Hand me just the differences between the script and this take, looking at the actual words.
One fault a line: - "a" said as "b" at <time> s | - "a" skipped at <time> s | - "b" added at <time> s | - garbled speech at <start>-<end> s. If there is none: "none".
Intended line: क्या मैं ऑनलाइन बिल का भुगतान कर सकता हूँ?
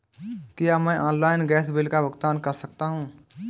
- "गैस" added at 1.5 s